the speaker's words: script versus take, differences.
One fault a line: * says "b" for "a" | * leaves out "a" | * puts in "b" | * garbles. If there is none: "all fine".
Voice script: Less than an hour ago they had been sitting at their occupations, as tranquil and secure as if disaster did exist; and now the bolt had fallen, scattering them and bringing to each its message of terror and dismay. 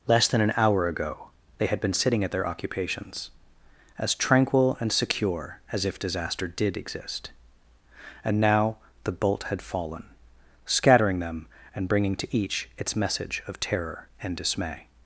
all fine